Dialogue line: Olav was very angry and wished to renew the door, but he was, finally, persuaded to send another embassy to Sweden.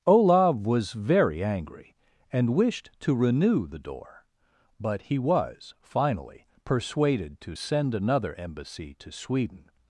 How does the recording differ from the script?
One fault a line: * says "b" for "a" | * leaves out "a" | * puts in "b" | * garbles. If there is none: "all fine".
all fine